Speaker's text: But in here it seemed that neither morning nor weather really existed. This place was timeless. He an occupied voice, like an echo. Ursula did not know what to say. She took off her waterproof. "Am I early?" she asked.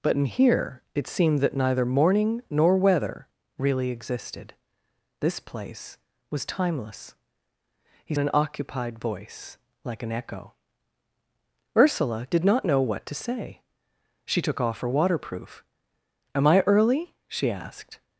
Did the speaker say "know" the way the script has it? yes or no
yes